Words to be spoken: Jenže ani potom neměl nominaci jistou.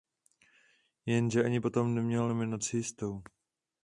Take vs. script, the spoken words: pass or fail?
pass